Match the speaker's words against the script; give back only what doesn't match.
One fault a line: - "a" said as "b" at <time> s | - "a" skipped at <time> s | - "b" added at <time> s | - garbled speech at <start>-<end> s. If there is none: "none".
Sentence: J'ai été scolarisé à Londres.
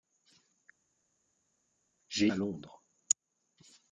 - "été scolarisé" skipped at 2.3 s